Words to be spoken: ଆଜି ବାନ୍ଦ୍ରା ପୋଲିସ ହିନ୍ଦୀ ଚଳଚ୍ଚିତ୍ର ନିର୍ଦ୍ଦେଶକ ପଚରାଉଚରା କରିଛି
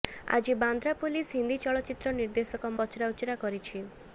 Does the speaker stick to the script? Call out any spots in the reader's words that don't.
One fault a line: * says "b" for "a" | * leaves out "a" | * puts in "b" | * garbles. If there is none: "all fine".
all fine